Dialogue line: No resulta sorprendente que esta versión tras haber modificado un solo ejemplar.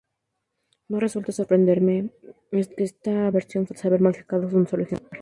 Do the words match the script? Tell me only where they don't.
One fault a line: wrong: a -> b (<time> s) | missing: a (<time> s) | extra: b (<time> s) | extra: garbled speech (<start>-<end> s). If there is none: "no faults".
no faults